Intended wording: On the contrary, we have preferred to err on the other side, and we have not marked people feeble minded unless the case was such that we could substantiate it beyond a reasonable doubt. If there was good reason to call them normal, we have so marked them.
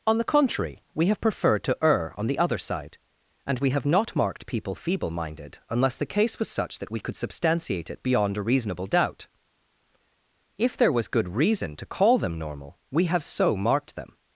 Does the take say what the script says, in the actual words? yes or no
yes